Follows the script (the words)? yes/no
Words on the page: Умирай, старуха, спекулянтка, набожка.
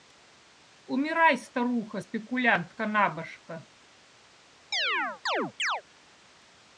yes